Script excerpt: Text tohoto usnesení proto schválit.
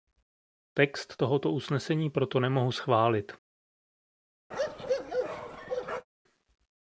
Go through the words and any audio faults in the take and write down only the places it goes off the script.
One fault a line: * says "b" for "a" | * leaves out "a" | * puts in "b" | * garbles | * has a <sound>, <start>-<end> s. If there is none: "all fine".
* puts in "nemohu"
* has a bark, 4.5-6.1 s